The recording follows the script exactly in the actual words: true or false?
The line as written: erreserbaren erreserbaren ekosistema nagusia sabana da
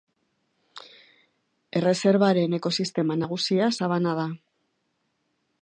false